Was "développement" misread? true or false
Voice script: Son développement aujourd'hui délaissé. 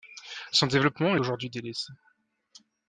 false